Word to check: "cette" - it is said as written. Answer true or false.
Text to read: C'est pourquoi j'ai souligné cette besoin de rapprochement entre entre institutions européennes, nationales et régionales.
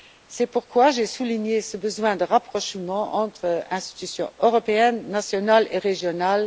false